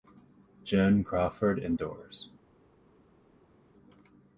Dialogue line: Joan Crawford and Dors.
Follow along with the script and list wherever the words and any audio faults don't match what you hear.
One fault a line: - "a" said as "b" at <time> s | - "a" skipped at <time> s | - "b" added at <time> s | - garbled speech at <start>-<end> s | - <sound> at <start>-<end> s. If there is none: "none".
none